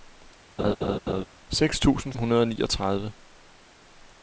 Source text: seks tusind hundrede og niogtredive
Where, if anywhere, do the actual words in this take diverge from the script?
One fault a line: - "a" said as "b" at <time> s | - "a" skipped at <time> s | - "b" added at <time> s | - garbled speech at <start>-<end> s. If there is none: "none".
none